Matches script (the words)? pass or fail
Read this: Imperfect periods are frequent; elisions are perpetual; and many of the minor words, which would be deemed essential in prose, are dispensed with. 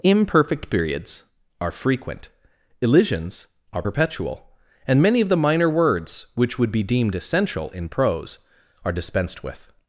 pass